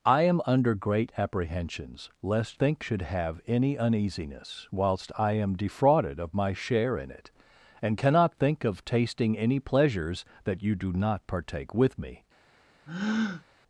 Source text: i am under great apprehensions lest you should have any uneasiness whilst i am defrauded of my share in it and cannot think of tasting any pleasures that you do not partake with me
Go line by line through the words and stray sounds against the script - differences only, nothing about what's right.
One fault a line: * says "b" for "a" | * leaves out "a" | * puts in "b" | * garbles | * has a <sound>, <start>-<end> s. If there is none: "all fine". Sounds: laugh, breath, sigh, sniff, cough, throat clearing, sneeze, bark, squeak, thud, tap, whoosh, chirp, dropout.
* says "think" for "you"
* has a breath, 12.9-13.4 s